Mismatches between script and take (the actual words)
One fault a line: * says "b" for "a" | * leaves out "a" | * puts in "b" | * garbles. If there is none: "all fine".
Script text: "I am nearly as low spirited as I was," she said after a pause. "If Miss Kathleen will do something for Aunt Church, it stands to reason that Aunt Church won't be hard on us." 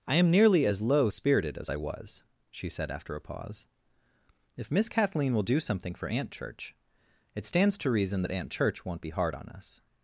all fine